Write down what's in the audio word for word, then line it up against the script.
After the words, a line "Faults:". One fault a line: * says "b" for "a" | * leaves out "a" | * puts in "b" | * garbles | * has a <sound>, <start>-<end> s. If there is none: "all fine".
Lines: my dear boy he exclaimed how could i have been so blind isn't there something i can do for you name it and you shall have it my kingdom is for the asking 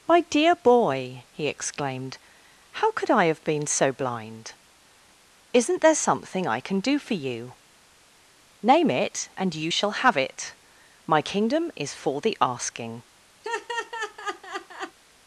my dear boy he exclaimed how could i have been so blind isn't there something i can do for you name it and you shall have it my kingdom is for the asking
Faults:
* has a laugh, 13.4-15.0 s